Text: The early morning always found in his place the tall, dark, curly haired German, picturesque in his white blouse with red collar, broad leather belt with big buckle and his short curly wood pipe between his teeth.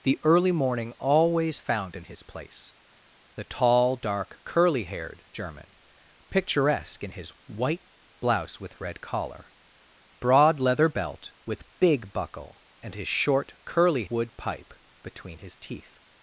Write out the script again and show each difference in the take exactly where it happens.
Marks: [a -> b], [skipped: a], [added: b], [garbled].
The early morning always found in his place the tall, dark, curly haired German, picturesque in his white blouse with red collar, broad leather belt with big buckle and his short curly wood pipe between his teeth.